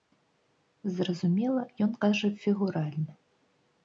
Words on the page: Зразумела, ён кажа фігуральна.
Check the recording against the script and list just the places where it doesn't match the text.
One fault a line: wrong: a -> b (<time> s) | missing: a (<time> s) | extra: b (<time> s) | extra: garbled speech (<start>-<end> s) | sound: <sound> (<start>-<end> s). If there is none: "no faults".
no faults